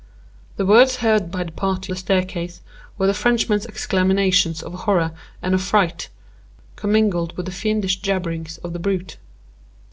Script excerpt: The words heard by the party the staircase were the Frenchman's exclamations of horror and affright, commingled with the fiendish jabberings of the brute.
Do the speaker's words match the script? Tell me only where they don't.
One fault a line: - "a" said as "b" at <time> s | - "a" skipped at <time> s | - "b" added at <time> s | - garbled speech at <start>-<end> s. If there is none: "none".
none